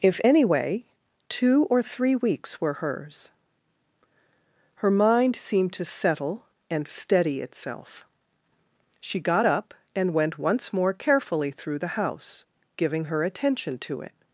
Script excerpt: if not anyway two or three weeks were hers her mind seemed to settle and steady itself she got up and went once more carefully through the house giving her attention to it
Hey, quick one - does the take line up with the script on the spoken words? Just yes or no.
no